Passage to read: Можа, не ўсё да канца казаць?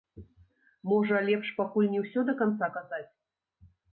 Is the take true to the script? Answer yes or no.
no